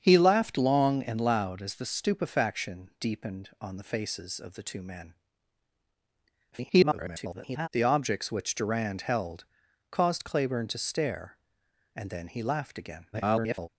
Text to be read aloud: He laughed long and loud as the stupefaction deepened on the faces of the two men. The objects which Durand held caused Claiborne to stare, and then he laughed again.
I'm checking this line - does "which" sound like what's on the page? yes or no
yes